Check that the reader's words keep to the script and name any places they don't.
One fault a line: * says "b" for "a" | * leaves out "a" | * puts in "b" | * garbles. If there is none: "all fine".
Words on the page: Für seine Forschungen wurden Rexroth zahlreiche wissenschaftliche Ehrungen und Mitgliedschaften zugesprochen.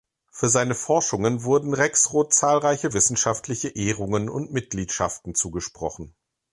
all fine